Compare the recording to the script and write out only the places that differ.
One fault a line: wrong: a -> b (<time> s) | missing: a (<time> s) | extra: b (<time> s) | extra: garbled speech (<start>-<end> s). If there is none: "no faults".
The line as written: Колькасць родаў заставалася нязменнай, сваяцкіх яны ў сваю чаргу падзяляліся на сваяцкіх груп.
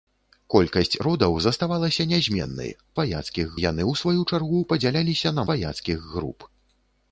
no faults